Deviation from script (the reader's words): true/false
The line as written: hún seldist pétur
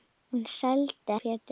false